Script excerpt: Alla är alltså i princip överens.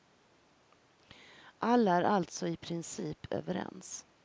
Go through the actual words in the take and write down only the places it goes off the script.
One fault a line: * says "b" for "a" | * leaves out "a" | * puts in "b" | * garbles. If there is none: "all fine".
all fine